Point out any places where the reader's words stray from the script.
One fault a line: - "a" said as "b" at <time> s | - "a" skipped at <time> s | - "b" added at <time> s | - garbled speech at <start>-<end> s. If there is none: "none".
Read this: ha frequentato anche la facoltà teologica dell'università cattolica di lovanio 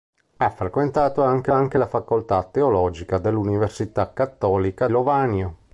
- "anche" added at 1.5 s
- "di" skipped at 4.9 s